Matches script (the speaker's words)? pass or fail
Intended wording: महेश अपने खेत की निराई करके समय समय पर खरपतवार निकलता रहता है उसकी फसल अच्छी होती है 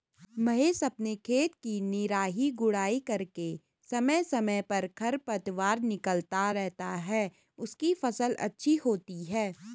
fail